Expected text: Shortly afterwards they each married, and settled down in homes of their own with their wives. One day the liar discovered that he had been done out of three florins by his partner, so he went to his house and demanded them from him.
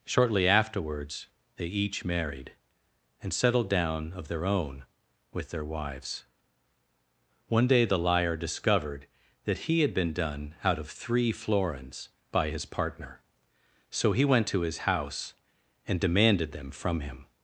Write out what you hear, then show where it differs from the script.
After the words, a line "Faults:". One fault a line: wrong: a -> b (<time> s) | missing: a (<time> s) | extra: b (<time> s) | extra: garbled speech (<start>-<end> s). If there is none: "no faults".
Shortly afterwards they each married, and settled down of their own with their wives. One day the liar discovered that he had been done out of three florins by his partner, so he went to his house and demanded them from him.
Faults:
missing: in homes (4.1 s)